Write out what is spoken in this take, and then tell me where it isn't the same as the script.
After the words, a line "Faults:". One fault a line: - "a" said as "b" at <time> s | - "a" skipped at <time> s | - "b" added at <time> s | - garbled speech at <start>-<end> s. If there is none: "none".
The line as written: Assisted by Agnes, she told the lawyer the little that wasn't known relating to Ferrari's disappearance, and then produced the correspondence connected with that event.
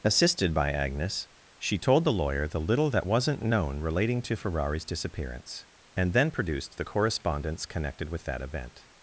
Assisted by Agnes, she told the lawyer the little that wasn't known relating to Ferrari's disappearance, and then produced the correspondence connected with that event.
Faults:
none